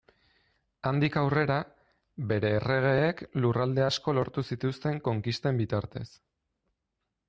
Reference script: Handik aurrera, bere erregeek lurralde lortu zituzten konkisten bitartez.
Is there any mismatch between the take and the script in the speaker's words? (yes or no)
yes